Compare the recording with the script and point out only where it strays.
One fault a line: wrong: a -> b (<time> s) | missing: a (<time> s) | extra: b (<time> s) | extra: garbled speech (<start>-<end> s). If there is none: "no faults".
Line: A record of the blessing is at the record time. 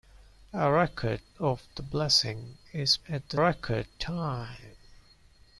no faults